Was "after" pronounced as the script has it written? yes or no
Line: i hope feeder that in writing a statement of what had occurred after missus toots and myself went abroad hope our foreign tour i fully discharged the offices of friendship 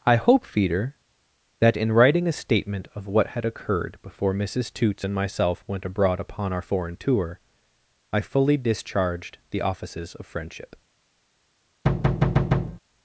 no